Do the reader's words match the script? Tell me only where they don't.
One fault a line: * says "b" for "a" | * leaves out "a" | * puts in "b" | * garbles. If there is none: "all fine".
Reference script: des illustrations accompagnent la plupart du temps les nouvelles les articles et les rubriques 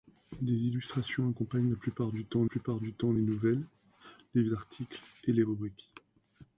* puts in "plupart du temps"